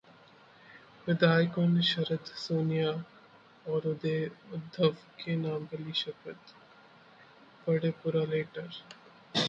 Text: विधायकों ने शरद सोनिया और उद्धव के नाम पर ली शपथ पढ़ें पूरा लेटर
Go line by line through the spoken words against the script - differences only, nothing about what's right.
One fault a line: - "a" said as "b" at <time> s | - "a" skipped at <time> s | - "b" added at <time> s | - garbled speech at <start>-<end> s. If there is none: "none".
none